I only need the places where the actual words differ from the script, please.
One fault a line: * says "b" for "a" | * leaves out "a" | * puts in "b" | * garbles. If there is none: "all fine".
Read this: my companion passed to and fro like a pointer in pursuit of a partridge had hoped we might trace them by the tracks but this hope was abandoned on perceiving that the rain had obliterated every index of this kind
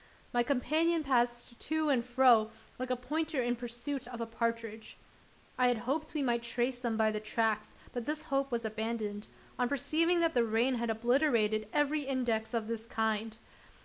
* puts in "i"